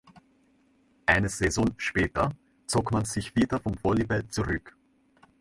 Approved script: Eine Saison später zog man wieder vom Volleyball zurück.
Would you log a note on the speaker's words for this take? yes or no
yes